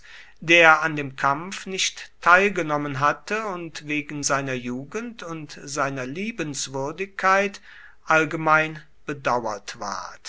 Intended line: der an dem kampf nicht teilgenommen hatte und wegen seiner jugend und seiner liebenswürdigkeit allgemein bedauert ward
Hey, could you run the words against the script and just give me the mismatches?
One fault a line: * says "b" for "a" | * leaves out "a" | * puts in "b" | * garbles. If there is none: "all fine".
all fine